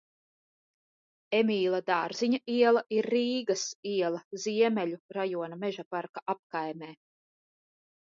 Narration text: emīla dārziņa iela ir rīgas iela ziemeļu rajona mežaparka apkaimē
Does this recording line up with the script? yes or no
yes